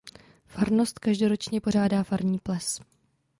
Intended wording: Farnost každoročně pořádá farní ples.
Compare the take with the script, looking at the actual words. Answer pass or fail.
pass